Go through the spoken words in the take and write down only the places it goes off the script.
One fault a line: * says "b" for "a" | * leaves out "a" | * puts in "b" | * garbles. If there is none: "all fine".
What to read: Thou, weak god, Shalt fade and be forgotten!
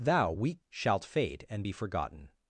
* leaves out "god"